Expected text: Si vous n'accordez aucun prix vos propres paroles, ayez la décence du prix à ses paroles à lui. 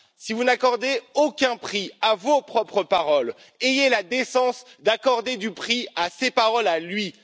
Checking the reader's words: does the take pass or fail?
fail